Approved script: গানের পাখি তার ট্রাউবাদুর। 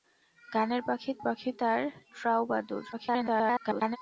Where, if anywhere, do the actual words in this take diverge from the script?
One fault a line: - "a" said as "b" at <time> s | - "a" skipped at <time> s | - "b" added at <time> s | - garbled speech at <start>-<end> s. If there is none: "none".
- "পাখি" added at 1.2 s
- garbled speech at 2.9-4.0 s